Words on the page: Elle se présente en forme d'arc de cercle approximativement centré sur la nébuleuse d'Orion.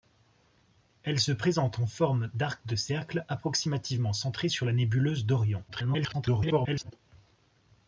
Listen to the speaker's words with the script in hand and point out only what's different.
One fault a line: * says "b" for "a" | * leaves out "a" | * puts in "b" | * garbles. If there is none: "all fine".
* garbles